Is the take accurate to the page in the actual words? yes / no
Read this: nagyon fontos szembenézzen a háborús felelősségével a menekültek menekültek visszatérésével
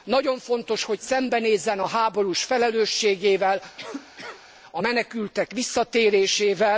no